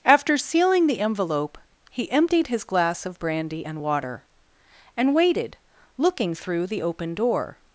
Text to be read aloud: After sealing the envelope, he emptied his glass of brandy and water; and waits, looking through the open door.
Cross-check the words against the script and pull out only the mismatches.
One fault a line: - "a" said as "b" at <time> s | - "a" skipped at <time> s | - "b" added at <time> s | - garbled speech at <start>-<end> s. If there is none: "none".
- "waits" said as "waited" at 5.1 s